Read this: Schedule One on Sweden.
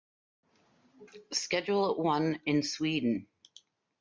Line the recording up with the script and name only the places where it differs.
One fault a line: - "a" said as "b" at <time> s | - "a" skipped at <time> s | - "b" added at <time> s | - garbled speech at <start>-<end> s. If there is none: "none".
- "on" said as "in" at 2.5 s